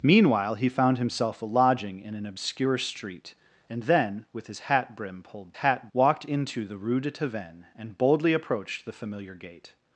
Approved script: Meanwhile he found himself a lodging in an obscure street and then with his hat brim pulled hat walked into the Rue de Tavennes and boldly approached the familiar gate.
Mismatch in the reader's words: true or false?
false